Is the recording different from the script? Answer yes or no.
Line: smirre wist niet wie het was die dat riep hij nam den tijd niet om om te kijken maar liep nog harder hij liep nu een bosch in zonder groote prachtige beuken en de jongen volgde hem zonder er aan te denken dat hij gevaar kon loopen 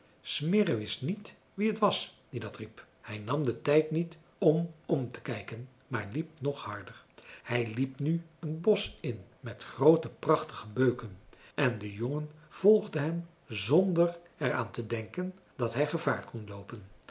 yes